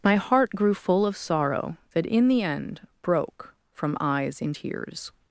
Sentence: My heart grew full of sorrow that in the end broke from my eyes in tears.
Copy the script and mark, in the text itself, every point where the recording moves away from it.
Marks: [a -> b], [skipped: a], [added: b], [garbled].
My heart grew full of sorrow that in the end broke from [skipped: my] eyes in tears.